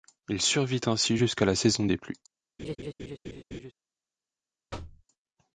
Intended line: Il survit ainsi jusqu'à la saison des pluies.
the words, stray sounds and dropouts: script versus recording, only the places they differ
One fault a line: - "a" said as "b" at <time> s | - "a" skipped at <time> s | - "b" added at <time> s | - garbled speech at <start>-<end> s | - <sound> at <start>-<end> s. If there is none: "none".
- laugh at 2.6-3.7 s
- thud at 4.7-5.0 s